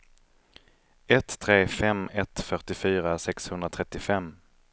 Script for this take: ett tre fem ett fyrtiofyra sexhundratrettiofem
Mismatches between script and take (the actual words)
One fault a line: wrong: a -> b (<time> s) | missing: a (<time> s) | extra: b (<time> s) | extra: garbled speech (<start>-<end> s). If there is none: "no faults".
no faults